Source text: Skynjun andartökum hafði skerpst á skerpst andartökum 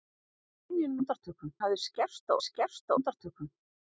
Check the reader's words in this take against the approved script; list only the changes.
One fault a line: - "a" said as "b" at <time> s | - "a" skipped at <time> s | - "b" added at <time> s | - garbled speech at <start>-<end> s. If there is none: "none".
none